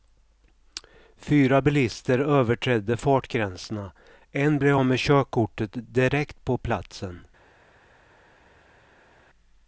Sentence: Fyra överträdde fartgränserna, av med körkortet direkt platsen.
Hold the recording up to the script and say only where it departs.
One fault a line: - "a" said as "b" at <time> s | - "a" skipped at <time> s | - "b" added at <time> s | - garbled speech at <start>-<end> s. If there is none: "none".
- "bilister" added at 1.6 s
- "en blev" added at 4.3 s
- "på" added at 6.4 s